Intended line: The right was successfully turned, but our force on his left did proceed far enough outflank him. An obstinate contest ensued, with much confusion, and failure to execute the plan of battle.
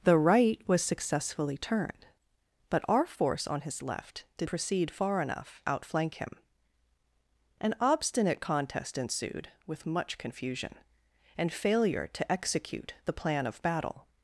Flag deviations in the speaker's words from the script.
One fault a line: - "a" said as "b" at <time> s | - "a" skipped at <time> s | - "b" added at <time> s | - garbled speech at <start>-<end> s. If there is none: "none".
none